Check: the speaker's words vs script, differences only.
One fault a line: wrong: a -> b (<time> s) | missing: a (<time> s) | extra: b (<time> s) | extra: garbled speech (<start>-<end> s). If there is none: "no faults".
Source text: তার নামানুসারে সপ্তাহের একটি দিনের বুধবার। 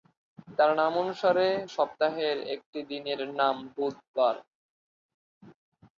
extra: নাম (3.4 s)